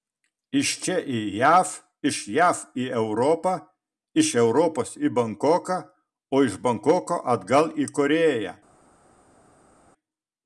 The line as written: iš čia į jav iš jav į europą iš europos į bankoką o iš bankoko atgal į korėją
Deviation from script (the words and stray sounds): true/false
false